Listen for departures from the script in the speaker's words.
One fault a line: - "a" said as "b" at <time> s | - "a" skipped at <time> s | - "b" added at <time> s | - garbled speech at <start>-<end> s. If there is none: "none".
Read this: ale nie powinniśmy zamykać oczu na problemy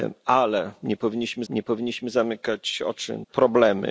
- "nie powinniśmy" added at 1.5 s
- "na" skipped at 3.2 s